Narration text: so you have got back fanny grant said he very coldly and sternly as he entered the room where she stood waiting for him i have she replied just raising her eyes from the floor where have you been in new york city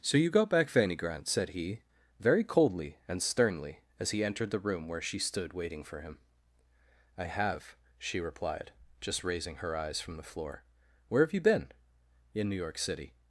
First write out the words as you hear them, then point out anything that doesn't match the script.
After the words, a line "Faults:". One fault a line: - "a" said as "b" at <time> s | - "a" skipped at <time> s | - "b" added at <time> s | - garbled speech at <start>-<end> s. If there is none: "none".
so you got back fanny grant said he very coldly and sternly as he entered the room where she stood waiting for him i have she replied just raising her eyes from the floor where have you been in new york city
Faults:
- "have" skipped at 0.3 s